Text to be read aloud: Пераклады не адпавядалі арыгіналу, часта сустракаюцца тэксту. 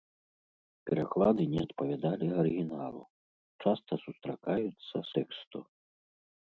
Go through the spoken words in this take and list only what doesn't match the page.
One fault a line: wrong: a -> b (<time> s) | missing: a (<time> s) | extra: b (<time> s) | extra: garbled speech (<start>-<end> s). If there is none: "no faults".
no faults